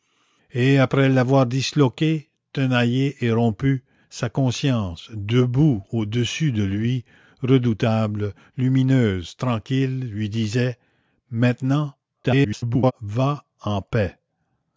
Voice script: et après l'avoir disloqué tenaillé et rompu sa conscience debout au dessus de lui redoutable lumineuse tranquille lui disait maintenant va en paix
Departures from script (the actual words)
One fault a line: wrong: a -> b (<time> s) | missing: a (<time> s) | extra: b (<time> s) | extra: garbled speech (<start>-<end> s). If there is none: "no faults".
extra: garbled speech (12.2-12.9 s)